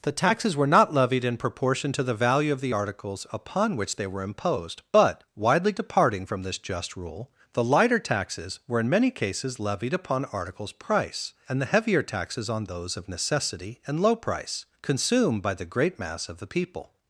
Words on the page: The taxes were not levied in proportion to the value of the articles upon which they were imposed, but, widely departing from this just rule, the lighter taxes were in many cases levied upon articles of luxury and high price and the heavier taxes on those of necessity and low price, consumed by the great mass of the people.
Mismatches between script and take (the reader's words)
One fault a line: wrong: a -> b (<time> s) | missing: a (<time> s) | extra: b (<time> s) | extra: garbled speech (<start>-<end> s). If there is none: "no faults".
missing: of luxury and high (10.7 s)